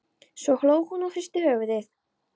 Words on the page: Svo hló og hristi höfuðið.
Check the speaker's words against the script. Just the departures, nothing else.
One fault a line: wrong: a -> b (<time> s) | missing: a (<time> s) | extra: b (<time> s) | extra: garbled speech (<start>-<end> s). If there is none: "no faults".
extra: hún (0.9 s)